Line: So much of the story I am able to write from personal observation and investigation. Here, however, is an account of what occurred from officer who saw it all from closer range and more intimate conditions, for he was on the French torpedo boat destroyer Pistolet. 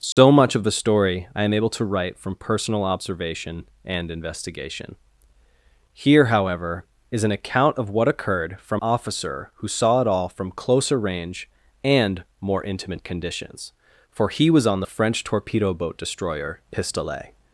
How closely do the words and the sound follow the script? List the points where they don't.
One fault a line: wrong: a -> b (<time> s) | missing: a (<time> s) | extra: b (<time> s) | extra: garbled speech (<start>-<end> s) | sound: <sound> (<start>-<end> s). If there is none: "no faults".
sound: dropout (0.1-0.2 s)